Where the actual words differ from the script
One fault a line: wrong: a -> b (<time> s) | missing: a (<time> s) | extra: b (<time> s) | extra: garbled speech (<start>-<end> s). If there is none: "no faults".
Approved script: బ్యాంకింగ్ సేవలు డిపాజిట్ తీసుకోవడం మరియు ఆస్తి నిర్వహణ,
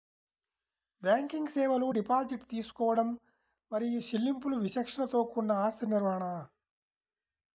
extra: చెల్లింపులు విచక్షణతో కూడిన (4.0 s)